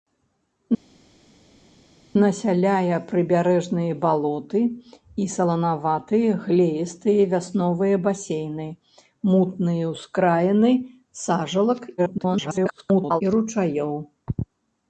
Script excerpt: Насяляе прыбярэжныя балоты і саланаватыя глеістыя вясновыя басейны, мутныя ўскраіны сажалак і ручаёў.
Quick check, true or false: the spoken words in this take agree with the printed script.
false